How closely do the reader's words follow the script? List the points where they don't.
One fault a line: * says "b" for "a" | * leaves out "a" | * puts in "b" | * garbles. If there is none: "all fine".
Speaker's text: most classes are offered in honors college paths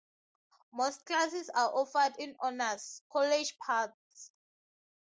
all fine